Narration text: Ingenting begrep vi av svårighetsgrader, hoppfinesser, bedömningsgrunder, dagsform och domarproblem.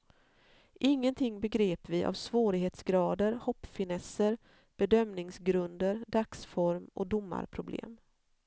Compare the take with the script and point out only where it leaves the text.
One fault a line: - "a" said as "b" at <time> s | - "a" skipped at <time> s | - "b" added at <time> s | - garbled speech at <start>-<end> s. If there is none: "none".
none